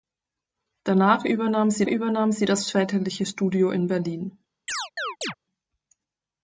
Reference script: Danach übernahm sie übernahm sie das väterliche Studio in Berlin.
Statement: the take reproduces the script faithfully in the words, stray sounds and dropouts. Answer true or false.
false